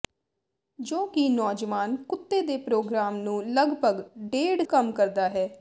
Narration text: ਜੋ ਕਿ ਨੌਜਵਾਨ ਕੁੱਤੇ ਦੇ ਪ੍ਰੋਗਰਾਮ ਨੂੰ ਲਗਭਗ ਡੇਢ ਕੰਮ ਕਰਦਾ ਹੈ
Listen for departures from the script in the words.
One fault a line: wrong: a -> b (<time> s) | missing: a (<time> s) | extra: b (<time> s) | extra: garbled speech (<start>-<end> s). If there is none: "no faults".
no faults